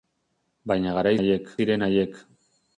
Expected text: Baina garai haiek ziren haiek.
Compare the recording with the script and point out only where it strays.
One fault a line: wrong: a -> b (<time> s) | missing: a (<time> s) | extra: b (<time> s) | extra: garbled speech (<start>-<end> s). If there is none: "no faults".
no faults